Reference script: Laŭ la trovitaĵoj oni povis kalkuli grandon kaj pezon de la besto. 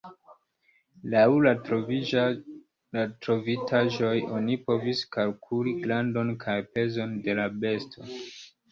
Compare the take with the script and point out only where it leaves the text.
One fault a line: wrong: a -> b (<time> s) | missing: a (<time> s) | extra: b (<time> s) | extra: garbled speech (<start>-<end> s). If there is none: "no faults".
no faults